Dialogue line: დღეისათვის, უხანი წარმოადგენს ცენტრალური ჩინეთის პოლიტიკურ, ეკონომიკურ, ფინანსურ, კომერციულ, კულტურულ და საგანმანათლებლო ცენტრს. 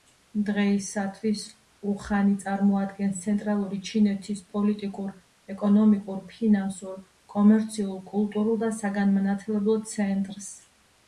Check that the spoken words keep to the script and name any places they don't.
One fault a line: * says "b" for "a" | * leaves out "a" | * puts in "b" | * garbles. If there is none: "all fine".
all fine